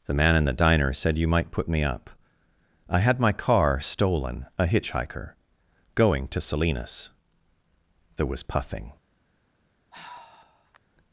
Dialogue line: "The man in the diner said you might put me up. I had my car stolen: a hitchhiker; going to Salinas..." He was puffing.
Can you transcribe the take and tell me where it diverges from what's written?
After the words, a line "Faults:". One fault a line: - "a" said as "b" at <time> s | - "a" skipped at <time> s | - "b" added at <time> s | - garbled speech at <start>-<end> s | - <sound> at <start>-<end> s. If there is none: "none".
"The man in the diner said you might put me up. I had my car stolen: a hitchhiker; going to Salinas..." There was puffing.
Faults:
- "He" said as "There" at 8.2 s
- sigh at 9.9-10.8 s